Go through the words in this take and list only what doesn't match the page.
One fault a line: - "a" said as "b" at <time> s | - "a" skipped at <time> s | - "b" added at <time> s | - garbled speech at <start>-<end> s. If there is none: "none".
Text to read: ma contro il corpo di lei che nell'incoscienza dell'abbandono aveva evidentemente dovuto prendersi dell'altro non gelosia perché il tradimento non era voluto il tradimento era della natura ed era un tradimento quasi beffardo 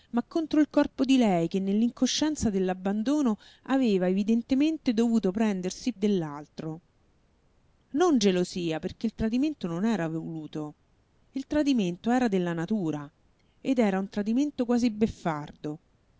none